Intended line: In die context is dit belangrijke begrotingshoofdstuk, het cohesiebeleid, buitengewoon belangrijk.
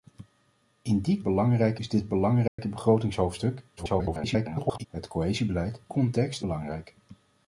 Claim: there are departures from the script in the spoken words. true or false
true